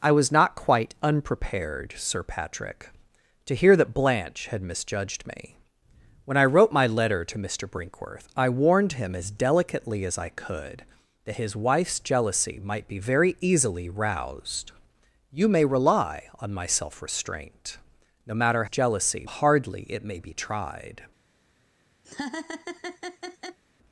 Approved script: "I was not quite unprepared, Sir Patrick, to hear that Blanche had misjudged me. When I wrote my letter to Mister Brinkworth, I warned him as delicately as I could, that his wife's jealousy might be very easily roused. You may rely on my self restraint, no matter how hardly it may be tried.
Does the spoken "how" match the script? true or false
false